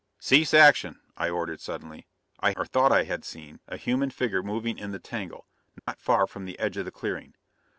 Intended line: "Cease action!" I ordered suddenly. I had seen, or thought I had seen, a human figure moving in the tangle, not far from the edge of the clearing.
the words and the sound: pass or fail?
fail